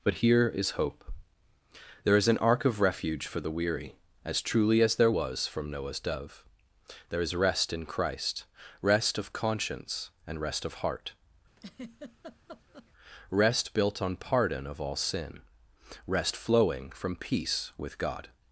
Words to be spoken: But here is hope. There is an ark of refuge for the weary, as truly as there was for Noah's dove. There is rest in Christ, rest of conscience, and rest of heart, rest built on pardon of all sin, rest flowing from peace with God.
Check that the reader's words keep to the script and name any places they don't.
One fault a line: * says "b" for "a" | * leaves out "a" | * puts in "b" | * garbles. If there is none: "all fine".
* says "from" for "for"